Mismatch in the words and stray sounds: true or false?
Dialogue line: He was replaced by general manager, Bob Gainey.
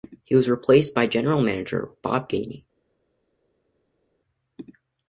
false